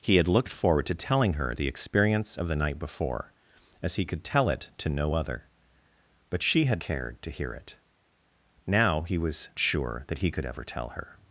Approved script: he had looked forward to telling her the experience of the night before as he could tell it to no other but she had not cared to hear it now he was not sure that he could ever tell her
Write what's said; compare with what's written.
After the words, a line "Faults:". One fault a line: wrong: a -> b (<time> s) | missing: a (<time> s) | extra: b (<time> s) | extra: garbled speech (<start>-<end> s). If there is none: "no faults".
he had looked forward to telling her the experience of the night before as he could tell it to no other but she had cared to hear it now he was sure that he could ever tell her
Faults:
missing: not (6.8 s)
missing: not (9.5 s)